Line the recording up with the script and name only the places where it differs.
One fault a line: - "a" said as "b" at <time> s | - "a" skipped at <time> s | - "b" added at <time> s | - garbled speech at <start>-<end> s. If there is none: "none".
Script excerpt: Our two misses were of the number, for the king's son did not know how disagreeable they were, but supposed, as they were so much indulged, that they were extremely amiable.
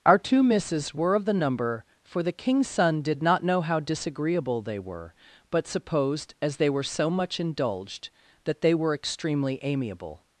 none